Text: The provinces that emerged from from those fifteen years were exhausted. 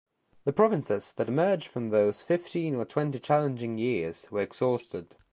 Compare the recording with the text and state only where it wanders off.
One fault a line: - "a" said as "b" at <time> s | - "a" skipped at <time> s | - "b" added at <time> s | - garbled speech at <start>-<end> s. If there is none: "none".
- "from" skipped at 1.9 s
- "or twenty challenging" added at 2.7 s